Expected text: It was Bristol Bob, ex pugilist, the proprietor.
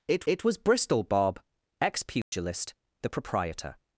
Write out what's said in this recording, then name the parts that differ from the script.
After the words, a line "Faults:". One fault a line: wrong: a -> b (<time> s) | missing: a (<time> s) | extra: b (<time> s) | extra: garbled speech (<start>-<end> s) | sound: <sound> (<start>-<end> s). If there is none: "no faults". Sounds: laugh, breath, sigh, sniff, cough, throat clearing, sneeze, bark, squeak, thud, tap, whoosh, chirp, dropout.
It it was Bristol Bob, ex pugilist, the proprietor.
Faults:
extra: it (0.3 s)
sound: dropout (2.2-2.3 s)